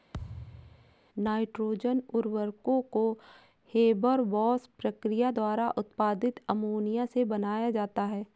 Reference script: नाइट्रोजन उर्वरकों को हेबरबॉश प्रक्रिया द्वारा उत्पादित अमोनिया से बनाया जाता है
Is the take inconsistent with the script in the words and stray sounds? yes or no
yes